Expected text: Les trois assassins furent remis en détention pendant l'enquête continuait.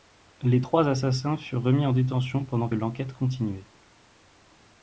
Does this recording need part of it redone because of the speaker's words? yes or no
no